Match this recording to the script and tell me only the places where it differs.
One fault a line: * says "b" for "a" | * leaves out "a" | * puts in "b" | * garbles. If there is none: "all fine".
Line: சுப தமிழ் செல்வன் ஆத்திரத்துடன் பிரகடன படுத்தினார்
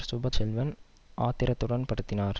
* leaves out "தமிழ்"
* leaves out "பிரகடன"